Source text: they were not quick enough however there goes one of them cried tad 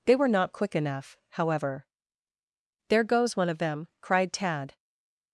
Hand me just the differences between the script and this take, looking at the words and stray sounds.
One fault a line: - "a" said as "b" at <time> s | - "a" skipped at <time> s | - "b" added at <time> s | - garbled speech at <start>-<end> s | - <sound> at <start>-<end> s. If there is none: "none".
none